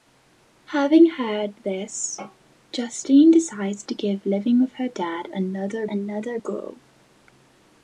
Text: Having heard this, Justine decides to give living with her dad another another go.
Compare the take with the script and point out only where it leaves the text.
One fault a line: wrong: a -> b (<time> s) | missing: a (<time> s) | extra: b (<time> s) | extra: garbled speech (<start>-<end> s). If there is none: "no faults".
no faults